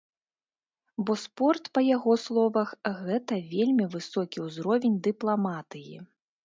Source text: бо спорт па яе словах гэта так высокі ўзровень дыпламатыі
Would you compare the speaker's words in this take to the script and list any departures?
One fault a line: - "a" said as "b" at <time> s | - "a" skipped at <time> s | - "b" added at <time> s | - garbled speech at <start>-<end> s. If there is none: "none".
- "яе" said as "яго" at 1.9 s
- "так" said as "вельмі" at 3.5 s